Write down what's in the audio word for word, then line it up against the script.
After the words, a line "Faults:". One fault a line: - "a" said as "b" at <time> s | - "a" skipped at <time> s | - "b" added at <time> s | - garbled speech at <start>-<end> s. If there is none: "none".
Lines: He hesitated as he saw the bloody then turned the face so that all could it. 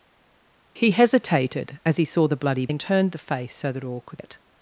He hesitated as he saw the bloody then turned the face so that all could it.
Faults:
none